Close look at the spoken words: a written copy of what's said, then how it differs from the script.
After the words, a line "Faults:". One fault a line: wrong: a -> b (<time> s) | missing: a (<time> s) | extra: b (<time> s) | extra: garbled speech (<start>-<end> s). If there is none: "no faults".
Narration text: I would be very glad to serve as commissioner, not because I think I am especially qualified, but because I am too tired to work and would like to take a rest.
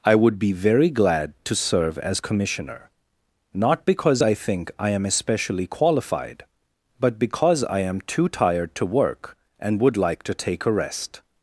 I would be very glad to serve as commissioner, not because I think I am especially qualified, but because I am too tired to work and would like to take a rest.
Faults:
no faults